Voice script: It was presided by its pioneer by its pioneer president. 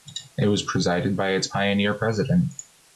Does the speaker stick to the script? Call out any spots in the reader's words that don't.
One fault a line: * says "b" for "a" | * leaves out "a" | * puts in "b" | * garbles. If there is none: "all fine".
* leaves out "by its pioneer"